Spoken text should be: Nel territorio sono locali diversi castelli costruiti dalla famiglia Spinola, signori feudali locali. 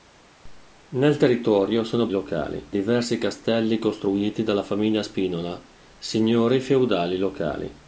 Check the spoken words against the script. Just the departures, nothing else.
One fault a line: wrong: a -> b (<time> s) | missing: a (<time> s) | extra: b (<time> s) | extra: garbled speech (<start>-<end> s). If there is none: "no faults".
no faults